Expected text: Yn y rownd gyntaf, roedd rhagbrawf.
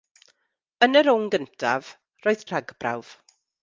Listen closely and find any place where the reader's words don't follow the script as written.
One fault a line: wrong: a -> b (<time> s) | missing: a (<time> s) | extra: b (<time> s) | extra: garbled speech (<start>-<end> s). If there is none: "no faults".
no faults